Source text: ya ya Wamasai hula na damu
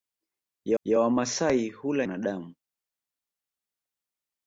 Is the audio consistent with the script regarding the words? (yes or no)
yes